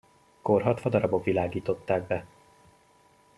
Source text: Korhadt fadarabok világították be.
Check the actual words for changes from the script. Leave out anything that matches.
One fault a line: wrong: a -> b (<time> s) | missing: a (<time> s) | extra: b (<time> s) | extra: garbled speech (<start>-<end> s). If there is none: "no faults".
no faults